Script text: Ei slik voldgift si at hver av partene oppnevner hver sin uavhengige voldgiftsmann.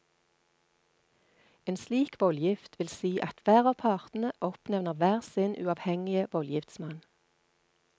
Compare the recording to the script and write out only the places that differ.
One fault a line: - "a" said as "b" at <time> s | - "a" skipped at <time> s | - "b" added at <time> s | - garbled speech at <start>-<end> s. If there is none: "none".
- "Ei" said as "En" at 1.6 s
- "vil" added at 2.8 s